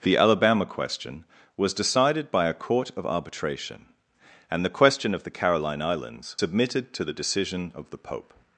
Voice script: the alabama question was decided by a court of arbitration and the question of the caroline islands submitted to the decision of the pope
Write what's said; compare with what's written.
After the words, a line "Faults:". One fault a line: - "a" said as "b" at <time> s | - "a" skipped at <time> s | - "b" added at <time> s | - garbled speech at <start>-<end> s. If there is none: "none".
the alabama question was decided by a court of arbitration and the question of the caroline islands submitted to the decision of the pope
Faults:
none